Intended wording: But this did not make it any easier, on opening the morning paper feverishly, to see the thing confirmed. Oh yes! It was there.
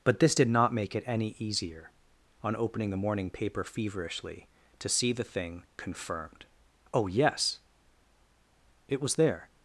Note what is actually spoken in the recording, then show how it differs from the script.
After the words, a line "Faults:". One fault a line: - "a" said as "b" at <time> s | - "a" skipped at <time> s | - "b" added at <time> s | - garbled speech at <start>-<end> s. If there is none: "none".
But this did not make it any easier, on opening the morning paper feverishly, to see the thing confirmed. Oh yes! It was there.
Faults:
none